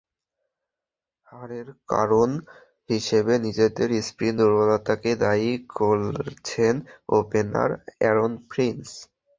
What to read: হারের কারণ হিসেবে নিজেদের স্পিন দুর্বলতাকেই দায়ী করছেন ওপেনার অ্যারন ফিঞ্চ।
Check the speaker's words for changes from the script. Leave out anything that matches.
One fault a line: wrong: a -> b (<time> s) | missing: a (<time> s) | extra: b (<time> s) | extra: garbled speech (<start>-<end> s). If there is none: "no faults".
no faults